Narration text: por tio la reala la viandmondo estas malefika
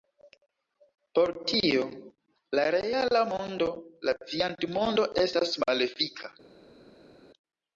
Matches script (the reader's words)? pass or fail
fail